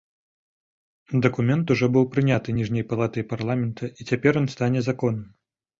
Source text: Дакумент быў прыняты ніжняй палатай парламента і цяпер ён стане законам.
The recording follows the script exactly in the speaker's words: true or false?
false